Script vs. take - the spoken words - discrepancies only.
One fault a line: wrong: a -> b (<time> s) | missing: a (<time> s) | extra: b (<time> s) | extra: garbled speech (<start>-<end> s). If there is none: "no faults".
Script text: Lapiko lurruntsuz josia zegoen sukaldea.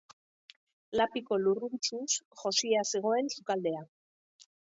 no faults